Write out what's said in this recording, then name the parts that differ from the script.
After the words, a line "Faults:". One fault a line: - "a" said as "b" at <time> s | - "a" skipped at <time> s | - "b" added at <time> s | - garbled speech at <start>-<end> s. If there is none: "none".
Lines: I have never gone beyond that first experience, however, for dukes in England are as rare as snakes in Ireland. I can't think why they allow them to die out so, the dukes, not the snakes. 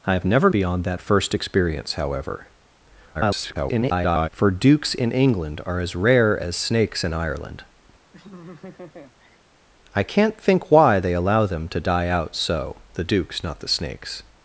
I have never beyond that first experience, however, [garbled] for dukes in England are as rare as snakes in Ireland. I can't think why they allow them to die out so, the dukes, not the snakes.
Faults:
- "gone" skipped at 0.5 s
- garbled speech at 3.1-4.3 s